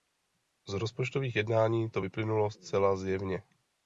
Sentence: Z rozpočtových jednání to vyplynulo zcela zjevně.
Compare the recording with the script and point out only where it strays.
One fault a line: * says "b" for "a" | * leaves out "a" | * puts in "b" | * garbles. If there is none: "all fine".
all fine